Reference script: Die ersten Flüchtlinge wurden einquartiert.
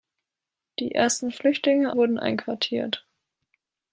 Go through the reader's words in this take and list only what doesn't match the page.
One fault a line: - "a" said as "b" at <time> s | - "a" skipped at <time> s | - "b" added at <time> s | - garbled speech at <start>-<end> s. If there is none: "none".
none